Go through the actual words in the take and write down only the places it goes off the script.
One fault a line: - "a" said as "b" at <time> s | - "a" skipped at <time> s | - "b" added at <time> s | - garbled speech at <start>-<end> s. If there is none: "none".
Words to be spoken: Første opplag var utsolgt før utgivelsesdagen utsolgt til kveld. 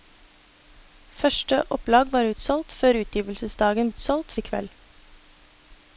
none